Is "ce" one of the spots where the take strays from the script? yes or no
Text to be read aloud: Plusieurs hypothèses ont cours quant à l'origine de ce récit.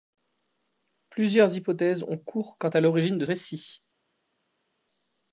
yes